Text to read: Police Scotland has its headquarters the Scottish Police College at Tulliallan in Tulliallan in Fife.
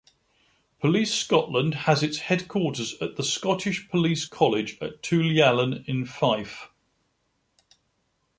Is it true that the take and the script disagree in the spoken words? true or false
true